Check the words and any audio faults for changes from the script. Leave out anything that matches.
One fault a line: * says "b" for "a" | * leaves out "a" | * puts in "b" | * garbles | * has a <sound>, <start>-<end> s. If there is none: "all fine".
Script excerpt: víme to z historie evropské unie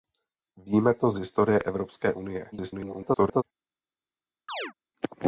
* garbles
* has a chirp, 4.5-4.7 s